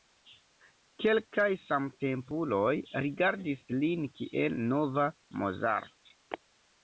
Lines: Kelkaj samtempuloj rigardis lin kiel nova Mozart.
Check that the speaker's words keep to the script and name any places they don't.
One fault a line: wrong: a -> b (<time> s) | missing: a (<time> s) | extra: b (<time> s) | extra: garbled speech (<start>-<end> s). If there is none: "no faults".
no faults